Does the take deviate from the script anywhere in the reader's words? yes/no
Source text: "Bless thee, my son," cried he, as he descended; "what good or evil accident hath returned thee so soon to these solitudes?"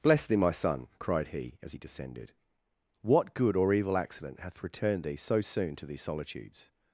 no